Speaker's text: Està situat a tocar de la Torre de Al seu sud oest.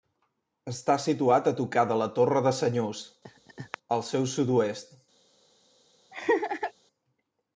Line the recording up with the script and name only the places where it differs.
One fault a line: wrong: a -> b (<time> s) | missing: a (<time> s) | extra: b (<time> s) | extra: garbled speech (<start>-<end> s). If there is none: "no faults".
extra: Senyús (2.6 s)